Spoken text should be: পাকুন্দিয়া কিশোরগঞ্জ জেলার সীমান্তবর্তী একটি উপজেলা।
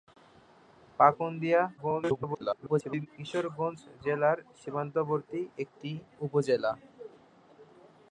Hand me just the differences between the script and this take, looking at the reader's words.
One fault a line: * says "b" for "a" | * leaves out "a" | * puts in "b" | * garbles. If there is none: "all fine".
* garbles